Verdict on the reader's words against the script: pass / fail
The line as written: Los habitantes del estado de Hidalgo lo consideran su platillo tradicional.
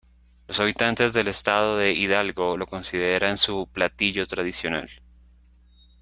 pass